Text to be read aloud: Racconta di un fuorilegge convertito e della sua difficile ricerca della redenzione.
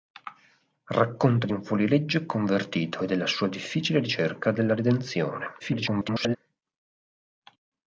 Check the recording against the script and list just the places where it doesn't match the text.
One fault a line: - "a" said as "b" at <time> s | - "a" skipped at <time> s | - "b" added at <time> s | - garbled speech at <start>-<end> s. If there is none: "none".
- garbled speech at 5.6-6.4 s